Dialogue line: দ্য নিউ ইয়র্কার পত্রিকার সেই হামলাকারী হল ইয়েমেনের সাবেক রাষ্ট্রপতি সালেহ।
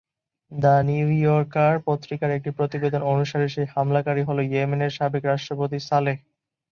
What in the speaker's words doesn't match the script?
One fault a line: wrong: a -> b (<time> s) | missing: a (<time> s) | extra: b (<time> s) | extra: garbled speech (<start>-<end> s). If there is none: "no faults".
extra: একটি প্রতিবেদন অনুসারে (2.3 s)